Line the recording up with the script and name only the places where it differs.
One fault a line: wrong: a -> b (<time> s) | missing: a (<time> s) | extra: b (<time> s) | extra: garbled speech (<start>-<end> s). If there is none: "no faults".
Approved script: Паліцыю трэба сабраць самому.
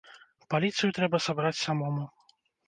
no faults